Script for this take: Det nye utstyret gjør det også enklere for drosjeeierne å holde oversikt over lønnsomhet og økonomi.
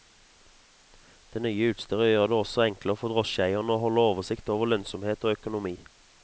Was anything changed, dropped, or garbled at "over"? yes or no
no